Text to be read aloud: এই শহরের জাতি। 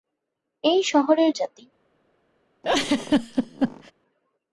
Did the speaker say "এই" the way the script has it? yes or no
yes